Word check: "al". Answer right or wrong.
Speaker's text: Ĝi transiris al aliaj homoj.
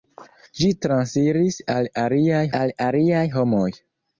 right